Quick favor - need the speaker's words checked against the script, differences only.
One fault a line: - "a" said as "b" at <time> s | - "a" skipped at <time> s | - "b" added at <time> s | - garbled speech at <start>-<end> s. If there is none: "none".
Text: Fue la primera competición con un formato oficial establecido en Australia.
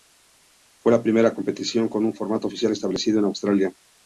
none